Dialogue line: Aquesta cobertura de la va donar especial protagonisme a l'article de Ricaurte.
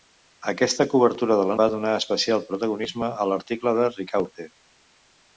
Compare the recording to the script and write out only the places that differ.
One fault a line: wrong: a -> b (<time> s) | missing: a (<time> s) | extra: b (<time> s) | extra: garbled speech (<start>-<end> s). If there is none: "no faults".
no faults